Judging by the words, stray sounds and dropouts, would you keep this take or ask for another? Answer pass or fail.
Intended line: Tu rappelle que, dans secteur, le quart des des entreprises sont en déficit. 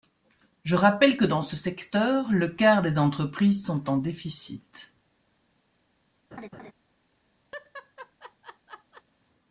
fail